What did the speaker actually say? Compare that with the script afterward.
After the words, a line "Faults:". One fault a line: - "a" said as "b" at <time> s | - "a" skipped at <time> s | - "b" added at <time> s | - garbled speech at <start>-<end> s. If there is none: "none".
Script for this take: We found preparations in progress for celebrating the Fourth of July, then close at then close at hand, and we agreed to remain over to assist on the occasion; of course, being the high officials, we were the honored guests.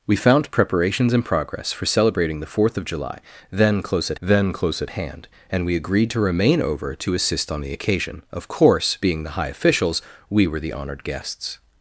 We found preparations in progress for celebrating the Fourth of July, then close at then close at hand, and we agreed to remain over to assist on the occasion; of course, being the high officials, we were the honored guests.
Faults:
none